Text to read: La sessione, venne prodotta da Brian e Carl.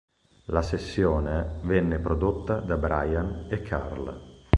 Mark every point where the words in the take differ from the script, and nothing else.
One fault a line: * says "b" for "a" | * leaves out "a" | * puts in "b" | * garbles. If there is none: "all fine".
all fine